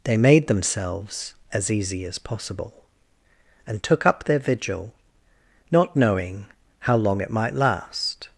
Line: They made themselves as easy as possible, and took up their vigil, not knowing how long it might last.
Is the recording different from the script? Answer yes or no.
no